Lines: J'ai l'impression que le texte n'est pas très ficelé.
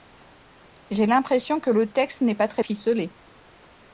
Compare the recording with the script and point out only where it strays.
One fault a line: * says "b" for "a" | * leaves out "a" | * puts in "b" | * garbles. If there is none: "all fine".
all fine